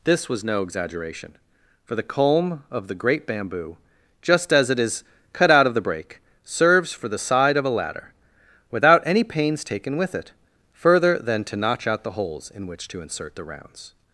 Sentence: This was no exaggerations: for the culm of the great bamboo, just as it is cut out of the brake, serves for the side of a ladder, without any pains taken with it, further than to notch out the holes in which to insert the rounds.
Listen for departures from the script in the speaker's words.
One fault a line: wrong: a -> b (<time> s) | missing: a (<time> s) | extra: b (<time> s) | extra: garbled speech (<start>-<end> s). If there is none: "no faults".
wrong: exaggerations -> exaggeration (0.6 s)